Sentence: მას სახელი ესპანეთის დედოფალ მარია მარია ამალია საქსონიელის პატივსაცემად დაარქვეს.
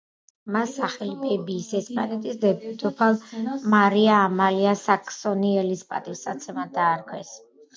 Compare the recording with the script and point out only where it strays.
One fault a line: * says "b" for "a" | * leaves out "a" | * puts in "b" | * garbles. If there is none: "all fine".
* puts in "ბებიის"
* leaves out "მარია"